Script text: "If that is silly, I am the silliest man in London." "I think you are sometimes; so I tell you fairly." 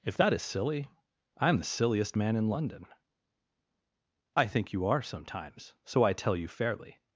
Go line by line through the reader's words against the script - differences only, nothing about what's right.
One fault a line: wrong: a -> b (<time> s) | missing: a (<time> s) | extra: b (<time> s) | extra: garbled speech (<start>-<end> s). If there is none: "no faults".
no faults